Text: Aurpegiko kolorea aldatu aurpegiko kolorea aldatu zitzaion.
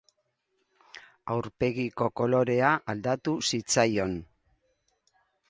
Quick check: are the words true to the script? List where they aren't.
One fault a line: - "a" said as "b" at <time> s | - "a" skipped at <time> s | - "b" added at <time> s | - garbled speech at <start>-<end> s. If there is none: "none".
- "aurpegiko kolorea aldatu" skipped at 3.4 s